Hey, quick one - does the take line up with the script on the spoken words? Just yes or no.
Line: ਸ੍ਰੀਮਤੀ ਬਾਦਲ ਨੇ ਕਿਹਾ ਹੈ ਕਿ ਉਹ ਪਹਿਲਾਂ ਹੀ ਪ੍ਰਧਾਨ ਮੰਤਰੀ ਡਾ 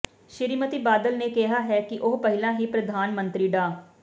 yes